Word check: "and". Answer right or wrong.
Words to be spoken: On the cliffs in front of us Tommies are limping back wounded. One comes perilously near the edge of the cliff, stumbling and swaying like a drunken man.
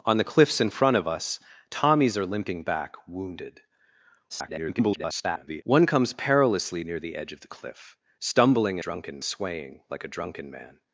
wrong